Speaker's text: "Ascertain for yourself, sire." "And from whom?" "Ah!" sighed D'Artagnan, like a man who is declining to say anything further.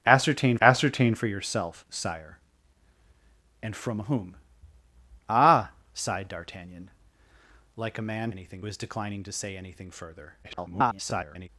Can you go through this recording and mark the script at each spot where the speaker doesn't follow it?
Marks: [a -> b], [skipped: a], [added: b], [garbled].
"Ascertain [added: ascertain] for yourself, sire." "And from whom?" "Ah!" sighed D'Artagnan, like a man [who -> anything] is declining to say anything further. [garbled]